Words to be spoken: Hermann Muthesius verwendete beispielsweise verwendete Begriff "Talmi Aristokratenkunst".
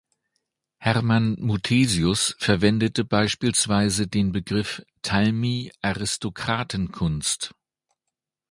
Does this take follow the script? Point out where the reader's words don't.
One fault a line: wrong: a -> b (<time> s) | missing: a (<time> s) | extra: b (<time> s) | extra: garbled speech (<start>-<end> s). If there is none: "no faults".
wrong: verwendete -> den (4.1 s)